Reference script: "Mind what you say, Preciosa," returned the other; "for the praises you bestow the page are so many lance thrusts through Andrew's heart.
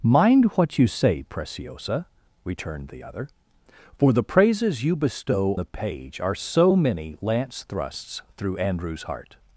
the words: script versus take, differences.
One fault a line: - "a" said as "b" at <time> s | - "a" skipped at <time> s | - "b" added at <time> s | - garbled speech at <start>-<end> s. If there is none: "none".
none